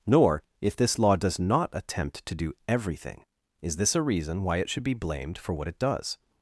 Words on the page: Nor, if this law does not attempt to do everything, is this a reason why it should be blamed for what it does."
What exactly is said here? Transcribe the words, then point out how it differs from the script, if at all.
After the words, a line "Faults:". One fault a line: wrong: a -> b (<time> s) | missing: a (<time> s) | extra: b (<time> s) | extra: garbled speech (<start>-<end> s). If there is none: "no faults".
Nor, if this law does not attempt to do everything, is this a reason why it should be blamed for what it does."
Faults:
no faults